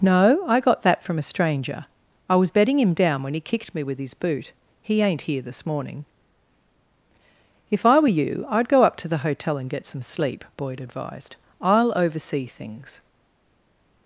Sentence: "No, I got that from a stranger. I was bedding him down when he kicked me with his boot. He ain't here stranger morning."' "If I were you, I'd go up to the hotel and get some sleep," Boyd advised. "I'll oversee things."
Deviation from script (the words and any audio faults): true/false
true